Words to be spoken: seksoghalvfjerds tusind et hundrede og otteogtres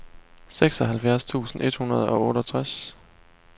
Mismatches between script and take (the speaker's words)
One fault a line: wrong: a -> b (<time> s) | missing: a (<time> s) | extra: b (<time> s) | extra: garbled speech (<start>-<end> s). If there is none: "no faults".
no faults